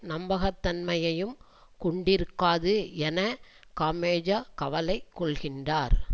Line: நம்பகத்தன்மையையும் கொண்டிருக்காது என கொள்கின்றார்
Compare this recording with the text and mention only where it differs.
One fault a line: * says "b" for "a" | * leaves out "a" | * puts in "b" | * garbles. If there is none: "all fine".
* puts in "காமெஜோ கவலை"